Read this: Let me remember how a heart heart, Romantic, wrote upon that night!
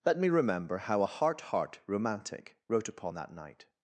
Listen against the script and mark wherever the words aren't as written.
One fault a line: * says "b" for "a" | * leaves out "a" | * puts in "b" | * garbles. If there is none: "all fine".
all fine